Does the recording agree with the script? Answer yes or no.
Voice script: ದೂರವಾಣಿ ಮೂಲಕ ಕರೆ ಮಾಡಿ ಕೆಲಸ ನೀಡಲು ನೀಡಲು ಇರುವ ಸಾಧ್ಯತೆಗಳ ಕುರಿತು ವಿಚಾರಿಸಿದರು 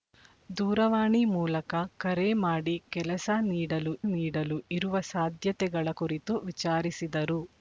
yes